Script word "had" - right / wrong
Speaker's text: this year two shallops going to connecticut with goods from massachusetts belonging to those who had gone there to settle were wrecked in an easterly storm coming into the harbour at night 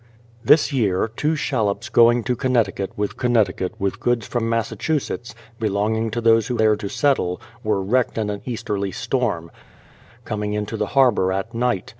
wrong